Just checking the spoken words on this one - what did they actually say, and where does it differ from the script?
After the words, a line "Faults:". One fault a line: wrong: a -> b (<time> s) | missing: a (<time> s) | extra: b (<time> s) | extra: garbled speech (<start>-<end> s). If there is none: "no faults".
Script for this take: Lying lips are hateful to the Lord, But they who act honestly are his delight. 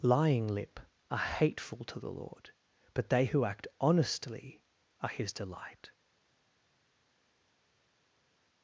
Lying lip are hateful to the Lord, But they who act honestly are his delight.
Faults:
wrong: lips -> lip (0.5 s)